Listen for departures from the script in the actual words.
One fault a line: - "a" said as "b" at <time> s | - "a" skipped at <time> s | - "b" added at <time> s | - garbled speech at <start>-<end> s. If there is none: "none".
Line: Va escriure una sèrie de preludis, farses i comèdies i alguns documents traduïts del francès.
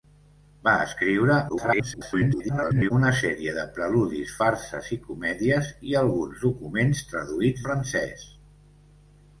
- garbled speech at 1.5-2.9 s
- "del" skipped at 7.6 s